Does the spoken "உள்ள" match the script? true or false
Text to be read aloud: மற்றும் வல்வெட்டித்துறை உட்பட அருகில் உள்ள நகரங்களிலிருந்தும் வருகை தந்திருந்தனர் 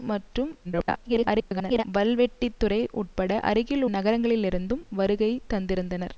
false